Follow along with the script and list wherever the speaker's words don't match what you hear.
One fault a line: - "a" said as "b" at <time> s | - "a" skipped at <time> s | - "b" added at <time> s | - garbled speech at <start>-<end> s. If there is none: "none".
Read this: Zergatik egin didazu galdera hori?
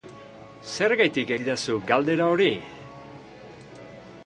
- "egin" skipped at 1.4 s